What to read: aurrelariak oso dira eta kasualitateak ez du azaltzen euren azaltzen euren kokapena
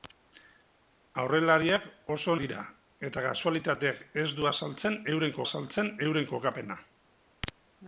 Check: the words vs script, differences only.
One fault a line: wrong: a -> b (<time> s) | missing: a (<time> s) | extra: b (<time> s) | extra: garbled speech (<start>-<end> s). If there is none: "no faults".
no faults